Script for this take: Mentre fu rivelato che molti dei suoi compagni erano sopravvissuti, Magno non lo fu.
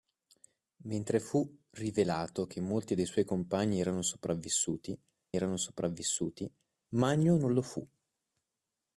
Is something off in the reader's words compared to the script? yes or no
yes